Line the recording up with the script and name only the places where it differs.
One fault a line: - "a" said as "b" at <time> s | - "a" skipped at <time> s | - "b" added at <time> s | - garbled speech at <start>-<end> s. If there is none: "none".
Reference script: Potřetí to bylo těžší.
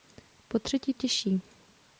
- "to bylo" skipped at 0.9 s